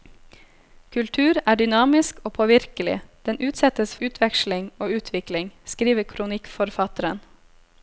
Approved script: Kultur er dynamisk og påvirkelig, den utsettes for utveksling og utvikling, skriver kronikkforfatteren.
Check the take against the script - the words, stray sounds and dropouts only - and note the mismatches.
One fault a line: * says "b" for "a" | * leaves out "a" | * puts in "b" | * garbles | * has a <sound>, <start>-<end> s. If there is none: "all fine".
* leaves out "for"